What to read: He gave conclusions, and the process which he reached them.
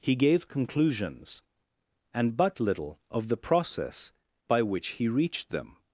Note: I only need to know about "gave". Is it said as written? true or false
true